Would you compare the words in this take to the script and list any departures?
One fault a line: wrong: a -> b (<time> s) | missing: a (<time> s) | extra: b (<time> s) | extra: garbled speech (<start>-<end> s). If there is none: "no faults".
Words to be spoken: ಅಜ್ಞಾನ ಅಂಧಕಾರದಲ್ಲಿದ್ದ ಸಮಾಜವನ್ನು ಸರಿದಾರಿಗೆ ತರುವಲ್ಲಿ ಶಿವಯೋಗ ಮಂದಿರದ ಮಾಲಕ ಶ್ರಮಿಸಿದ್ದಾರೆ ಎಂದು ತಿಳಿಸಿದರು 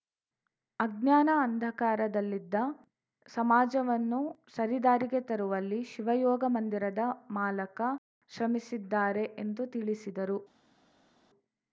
no faults